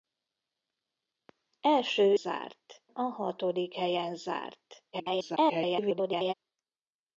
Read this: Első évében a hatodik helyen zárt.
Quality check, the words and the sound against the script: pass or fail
fail